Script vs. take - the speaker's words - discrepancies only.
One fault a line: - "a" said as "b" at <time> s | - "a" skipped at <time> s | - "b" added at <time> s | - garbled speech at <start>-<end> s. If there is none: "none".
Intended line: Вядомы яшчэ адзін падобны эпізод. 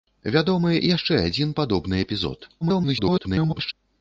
- garbled speech at 2.6-3.7 s